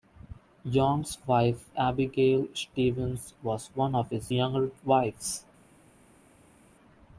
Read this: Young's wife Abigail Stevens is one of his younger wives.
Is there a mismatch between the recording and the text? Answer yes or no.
yes